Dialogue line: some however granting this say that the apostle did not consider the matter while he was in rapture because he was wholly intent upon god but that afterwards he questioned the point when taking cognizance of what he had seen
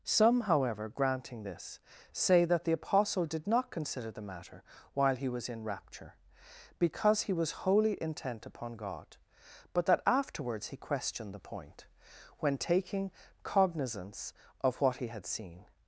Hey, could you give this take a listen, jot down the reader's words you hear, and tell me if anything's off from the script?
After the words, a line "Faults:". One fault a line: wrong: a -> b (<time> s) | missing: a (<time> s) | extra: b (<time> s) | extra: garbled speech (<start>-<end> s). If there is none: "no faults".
some however granting this say that the apostle did not consider the matter while he was in rapture because he was wholly intent upon god but that afterwards he questioned the point when taking cognizance of what he had seen
Faults:
no faults